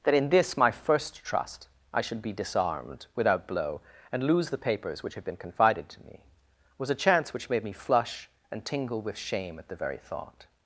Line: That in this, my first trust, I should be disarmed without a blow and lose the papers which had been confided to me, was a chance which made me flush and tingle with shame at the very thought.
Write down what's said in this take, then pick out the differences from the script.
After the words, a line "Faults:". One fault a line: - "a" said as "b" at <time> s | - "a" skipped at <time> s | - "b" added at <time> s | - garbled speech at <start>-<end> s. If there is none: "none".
That in this, my first trust, I should be disarmed without blow and lose the papers which had been confided to me, was a chance which made me flush and tingle with shame at the very thought.
Faults:
- "a" skipped at 3.5 s